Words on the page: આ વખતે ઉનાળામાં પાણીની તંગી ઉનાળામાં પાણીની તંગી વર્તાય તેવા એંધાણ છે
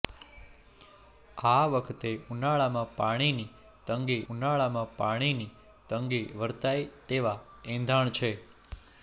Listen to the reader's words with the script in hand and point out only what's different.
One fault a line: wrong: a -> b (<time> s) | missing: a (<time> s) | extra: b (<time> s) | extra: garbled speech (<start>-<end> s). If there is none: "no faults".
no faults